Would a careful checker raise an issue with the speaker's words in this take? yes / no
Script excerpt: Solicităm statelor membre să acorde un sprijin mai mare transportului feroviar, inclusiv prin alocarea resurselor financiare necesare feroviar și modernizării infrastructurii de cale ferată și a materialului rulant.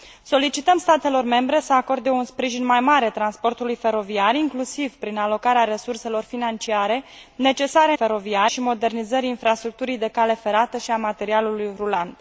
no